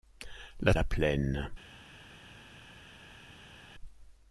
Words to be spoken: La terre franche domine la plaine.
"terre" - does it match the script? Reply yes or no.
no